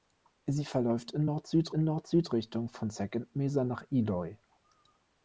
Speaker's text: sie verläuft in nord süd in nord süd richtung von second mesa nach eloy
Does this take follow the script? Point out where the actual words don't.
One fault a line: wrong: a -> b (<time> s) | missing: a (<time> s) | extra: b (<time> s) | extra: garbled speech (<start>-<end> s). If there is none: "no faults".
no faults